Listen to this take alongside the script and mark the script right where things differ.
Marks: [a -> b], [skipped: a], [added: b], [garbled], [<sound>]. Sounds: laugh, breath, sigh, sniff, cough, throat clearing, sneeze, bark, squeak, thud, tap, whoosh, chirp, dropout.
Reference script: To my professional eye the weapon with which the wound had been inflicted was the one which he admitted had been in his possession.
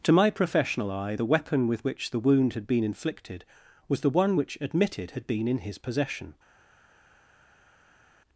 To my professional eye the weapon with which the wound had been inflicted was the one which [skipped: he] admitted had been in his possession.